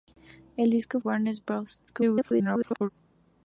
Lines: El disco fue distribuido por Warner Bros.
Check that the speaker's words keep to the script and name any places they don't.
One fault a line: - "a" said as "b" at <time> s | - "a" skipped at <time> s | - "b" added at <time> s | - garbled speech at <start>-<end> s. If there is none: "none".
- "fue distribuido por" skipped at 1.0 s
- garbled speech at 1.9-2.9 s